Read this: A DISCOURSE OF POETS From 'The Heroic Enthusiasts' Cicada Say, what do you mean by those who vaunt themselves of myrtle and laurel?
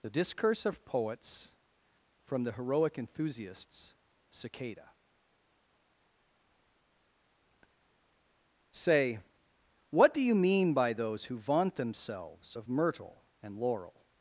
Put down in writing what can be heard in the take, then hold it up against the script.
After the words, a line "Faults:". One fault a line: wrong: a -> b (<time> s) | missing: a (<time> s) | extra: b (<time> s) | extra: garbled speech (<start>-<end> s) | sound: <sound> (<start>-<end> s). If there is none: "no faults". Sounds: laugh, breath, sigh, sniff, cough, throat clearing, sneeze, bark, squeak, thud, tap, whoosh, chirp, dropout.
The DISCOURSE OF POETS From 'The Heroic Enthusiasts' Cicada Say, what do you mean by those who vaunt themselves of myrtle and laurel?
Faults:
wrong: A -> The (0.0 s)